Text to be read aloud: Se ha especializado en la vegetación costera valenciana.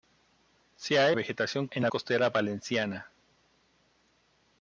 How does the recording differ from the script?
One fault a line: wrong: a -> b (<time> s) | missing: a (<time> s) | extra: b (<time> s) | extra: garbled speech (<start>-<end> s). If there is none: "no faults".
wrong: especializado -> vegetación (1.1 s)
missing: vegetación (1.9 s)